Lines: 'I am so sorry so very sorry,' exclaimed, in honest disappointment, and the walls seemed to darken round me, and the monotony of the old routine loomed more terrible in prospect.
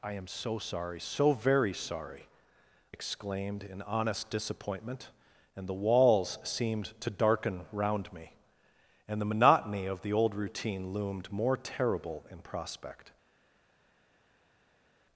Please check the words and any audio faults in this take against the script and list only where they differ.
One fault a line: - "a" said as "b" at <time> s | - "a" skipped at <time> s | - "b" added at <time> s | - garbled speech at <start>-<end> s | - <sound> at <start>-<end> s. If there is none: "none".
none